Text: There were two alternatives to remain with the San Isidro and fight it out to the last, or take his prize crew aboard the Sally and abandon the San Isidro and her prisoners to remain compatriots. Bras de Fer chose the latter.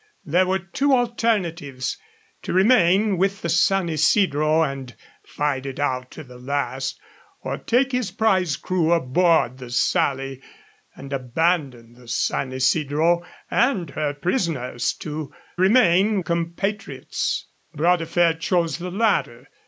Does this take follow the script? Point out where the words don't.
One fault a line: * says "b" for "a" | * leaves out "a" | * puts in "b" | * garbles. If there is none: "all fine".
all fine